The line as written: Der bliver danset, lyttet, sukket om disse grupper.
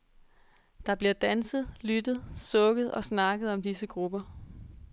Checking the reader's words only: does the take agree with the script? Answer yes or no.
no